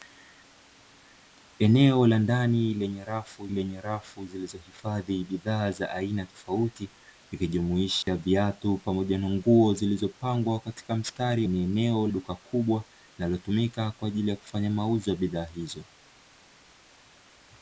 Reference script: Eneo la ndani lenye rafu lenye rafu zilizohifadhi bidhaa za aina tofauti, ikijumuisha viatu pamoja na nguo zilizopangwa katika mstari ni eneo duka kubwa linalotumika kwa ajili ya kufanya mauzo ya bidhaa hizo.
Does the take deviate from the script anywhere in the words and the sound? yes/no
yes